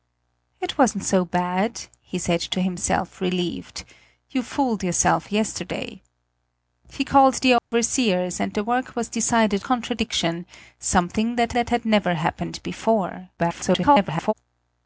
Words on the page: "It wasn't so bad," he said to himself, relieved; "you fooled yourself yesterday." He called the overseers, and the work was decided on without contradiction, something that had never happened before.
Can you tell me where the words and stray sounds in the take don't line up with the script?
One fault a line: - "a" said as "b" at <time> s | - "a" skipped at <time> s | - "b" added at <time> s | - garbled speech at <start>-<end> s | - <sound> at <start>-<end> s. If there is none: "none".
- dropout at 7.6-7.7 s
- "on without" skipped at 9.6 s
- "that" added at 11.5 s
- garbled speech at 13.4-14.3 s